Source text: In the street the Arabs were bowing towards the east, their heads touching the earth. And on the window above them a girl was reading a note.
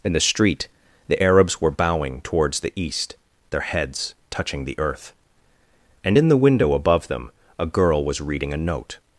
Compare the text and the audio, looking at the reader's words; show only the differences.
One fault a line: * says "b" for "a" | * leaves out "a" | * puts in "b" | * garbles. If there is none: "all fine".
* says "in" for "on"